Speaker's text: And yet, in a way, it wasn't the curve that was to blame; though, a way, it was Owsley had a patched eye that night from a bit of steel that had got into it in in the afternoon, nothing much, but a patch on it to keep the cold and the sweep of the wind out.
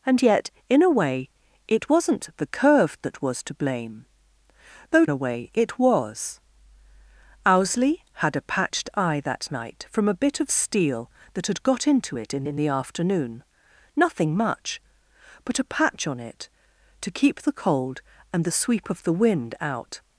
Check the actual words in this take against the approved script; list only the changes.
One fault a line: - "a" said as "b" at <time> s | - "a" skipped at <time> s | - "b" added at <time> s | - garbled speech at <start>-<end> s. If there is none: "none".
none